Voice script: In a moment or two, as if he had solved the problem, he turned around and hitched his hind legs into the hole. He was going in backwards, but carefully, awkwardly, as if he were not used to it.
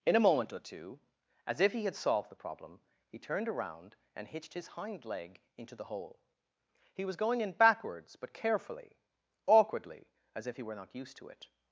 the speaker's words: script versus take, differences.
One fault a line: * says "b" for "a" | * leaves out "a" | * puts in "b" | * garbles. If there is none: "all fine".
* says "leg" for "legs"